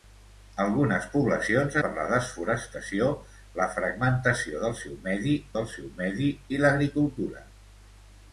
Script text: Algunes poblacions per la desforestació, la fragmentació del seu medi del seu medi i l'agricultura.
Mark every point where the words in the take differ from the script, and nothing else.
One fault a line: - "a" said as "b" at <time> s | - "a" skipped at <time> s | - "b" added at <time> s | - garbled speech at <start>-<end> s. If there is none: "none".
none